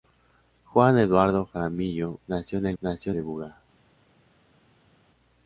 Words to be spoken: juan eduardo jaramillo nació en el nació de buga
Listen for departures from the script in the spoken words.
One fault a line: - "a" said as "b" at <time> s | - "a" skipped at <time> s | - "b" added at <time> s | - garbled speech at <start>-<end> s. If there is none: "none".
none